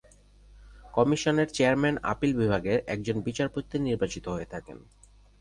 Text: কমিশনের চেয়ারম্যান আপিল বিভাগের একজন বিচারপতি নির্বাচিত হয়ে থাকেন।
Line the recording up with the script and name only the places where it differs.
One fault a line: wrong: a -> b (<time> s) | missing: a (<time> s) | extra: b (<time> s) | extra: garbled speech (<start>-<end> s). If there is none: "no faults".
no faults